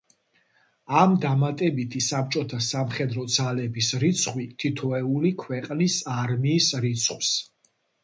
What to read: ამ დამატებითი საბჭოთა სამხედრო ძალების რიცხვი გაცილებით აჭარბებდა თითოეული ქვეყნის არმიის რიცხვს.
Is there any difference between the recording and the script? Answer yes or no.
yes